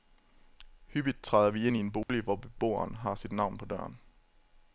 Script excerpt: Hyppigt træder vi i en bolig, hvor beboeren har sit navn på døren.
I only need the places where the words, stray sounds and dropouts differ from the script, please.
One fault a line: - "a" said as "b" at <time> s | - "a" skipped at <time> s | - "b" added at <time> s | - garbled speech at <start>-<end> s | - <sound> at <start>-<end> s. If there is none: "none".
- "ind" added at 1.7 s
- dropout at 2.0-2.1 s